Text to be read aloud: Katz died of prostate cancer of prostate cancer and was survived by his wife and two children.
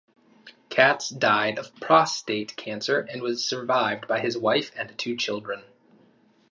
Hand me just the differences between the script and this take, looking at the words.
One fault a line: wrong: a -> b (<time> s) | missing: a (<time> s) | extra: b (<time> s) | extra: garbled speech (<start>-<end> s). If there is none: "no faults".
missing: of prostate cancer (3.0 s)